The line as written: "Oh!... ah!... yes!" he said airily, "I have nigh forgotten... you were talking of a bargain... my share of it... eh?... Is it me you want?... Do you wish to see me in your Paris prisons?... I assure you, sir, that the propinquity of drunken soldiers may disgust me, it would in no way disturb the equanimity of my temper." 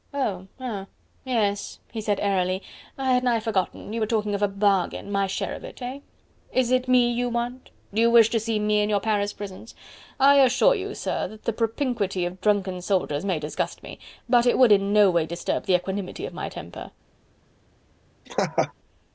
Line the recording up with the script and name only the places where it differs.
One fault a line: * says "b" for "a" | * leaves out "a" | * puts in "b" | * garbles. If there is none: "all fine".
* says "had" for "have"
* puts in "but"